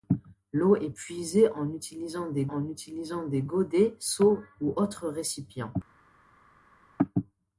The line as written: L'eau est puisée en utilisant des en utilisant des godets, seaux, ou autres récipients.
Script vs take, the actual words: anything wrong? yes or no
no